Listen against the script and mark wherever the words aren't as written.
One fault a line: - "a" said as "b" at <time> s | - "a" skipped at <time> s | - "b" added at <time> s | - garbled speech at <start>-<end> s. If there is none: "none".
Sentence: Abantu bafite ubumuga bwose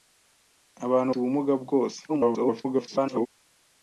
- "bafite" skipped at 1.1 s
- garbled speech at 2.1-3.3 s